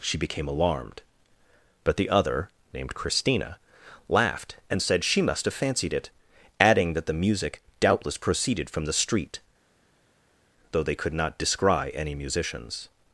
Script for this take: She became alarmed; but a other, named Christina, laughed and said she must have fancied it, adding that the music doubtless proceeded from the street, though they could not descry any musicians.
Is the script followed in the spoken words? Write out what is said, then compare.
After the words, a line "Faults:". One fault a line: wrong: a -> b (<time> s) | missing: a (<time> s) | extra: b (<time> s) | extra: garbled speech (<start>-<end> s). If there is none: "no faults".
She became alarmed; but the other, named Christina, laughed and said she must have fancied it, adding that the music doubtless proceeded from the street, though they could not descry any musicians.
Faults:
wrong: a -> the (1.9 s)